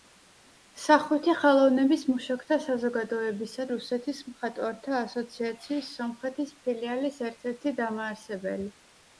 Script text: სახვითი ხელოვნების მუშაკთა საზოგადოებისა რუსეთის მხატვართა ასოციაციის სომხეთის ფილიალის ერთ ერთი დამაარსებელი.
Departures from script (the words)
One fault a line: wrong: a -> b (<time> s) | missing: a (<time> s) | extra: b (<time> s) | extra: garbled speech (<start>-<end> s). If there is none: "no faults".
no faults